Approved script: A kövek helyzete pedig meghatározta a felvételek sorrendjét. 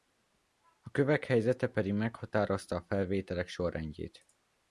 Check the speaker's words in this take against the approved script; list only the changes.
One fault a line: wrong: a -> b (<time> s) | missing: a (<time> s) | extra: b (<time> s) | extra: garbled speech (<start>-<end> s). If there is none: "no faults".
no faults